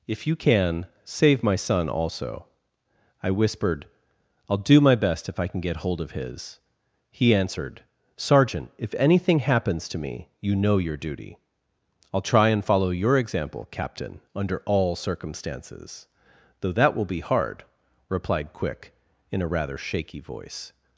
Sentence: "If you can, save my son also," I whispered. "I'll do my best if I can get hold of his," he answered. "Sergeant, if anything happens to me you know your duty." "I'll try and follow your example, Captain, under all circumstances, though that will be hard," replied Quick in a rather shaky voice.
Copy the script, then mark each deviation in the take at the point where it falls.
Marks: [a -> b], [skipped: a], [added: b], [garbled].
"If you can, save my son also," I whispered. "I'll do my best if I can get hold of his," he answered. "Sergeant, if anything happens to me you know your duty." "I'll try and follow your example, Captain, under all circumstances, though that will be hard," replied Quick in a rather shaky voice.